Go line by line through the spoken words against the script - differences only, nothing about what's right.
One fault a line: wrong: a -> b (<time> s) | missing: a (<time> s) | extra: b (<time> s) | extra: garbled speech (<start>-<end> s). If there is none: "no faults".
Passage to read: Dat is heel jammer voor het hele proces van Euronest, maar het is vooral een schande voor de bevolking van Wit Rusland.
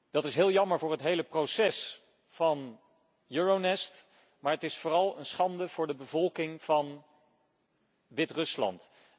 no faults